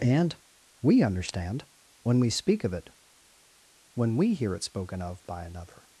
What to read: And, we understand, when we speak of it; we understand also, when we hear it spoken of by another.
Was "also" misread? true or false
true